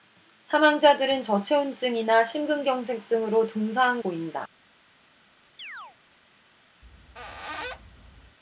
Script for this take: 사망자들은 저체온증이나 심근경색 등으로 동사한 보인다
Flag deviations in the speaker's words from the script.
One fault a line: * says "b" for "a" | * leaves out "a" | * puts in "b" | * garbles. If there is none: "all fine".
all fine